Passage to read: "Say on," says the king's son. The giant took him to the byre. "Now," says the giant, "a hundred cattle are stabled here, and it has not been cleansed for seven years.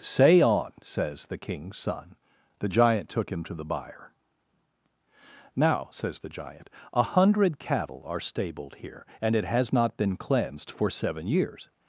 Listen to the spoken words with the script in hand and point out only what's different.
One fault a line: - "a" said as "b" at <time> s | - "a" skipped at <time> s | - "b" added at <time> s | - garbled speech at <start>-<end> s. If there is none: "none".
none